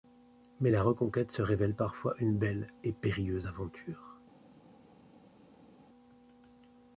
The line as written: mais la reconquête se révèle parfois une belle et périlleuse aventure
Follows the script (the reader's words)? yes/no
yes